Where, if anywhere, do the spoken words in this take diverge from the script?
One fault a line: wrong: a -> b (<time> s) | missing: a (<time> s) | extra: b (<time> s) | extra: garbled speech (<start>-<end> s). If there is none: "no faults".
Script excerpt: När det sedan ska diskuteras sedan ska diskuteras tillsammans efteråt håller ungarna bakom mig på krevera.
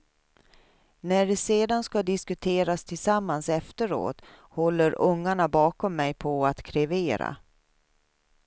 missing: sedan ska diskuteras (2.8 s)
extra: att (6.5 s)